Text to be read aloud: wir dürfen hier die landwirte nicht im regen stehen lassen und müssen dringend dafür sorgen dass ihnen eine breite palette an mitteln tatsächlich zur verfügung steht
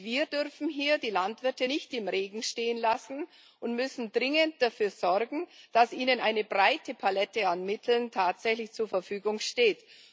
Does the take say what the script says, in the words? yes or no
yes